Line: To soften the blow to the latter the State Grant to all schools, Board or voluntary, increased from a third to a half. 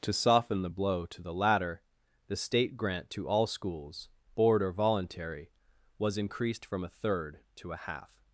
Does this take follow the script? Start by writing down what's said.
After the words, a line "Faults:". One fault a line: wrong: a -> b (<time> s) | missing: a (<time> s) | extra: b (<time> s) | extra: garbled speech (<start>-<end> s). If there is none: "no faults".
To soften the blow to the latter the State Grant to all schools, Board or voluntary, was increased from a third to a half.
Faults:
extra: was (6.0 s)